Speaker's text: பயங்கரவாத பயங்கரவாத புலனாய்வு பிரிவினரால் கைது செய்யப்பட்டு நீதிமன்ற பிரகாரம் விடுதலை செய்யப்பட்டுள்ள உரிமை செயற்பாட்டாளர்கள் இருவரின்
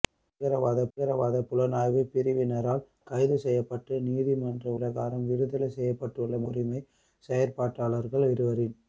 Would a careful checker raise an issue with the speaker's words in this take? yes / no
no